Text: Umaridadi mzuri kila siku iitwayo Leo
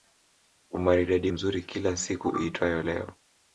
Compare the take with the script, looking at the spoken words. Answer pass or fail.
pass